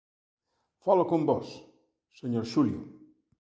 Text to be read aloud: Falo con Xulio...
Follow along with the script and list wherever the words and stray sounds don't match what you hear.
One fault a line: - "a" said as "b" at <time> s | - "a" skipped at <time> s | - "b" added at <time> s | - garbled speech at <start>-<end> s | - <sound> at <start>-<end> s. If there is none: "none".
- "vós señor" added at 1.3 s